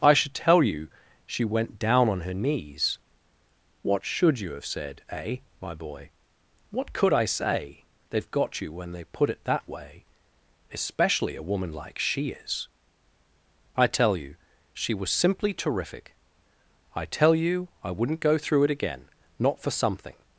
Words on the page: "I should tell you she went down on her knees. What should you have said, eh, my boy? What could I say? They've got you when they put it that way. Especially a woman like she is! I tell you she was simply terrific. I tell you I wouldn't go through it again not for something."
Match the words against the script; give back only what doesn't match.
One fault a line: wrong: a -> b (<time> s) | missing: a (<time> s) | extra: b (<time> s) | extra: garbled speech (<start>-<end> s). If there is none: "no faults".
no faults